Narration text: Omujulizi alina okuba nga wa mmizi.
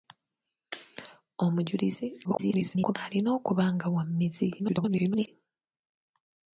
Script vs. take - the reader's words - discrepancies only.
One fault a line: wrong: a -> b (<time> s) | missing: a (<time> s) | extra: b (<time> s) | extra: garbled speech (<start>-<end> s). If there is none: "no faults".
extra: garbled speech (2.2-3.0 s)
extra: garbled speech (4.6-5.3 s)